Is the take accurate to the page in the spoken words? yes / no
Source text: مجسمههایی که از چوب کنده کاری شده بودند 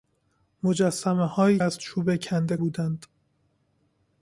no